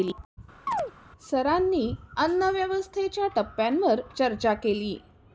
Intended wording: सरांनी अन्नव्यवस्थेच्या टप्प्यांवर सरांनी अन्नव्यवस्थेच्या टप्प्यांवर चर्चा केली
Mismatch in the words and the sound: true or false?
true